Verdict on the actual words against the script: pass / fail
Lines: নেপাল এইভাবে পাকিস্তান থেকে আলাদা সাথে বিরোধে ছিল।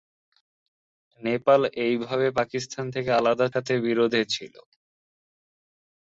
pass